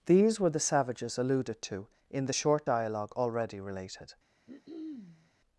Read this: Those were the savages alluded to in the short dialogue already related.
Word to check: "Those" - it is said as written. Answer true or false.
false